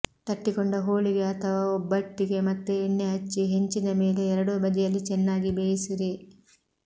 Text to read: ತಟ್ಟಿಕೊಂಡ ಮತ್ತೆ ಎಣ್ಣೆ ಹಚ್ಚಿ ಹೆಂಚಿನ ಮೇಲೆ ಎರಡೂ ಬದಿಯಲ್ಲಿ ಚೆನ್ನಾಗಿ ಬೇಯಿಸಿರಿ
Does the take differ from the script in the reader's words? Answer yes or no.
yes